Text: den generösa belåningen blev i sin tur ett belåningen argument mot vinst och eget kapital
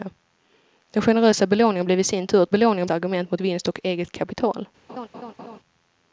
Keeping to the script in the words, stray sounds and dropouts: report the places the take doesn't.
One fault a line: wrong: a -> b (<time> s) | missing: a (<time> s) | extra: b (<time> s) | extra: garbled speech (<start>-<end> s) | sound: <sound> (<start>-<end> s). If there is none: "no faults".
sound: laugh (4.9-5.6 s)